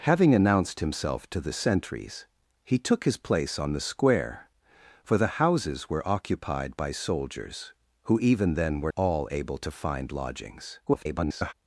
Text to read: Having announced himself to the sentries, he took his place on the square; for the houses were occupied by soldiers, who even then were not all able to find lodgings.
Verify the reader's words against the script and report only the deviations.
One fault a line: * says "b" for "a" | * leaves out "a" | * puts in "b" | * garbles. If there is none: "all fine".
* leaves out "not"
* garbles